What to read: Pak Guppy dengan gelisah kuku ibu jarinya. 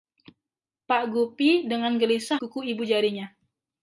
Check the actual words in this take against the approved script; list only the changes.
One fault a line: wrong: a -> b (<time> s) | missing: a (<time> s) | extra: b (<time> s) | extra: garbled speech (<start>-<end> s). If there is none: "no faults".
no faults